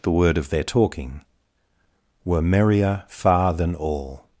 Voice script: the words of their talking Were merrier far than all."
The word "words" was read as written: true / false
false